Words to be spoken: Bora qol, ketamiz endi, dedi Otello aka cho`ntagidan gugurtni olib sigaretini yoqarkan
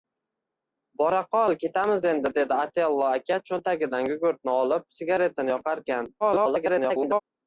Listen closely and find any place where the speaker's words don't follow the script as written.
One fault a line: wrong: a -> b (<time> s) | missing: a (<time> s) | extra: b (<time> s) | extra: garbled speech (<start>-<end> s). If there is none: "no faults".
extra: garbled speech (6.2-7.2 s)